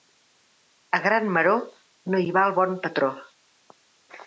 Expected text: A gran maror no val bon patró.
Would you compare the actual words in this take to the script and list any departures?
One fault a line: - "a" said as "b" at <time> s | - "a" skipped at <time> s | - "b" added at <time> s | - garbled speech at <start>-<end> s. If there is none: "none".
- "hi" added at 2.2 s